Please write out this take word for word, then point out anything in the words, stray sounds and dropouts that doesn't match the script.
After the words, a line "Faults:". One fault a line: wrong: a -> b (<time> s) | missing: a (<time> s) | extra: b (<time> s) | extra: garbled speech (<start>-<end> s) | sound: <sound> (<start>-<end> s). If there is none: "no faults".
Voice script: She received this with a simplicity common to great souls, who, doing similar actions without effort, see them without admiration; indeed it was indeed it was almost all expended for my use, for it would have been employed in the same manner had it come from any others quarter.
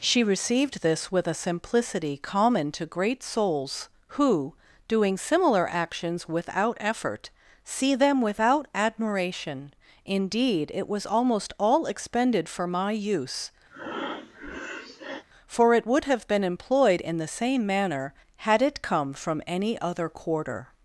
She received this with a simplicity common to great souls, who, doing similar actions without effort, see them without admiration; indeed it was almost all expended for my use, for it would have been employed in the same manner had it come from any other quarter.
Faults:
missing: indeed it was (11.0 s)
sound: breath (13.7-15.2 s)
wrong: others -> other (19.8 s)